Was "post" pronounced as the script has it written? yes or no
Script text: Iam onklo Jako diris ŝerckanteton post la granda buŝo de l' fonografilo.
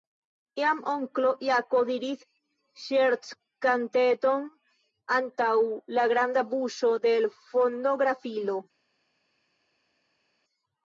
no